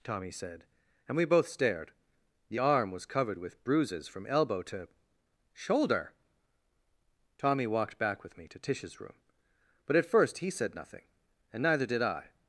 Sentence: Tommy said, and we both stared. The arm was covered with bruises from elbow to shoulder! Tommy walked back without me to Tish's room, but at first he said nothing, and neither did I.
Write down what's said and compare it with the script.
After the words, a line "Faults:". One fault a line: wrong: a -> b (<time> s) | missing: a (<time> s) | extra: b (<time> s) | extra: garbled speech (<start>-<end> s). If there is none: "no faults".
Tommy said, and we both stared. The arm was covered with bruises from elbow to shoulder! Tommy walked back with me to Tish's room, but at first he said nothing, and neither did I.
Faults:
wrong: without -> with (8.2 s)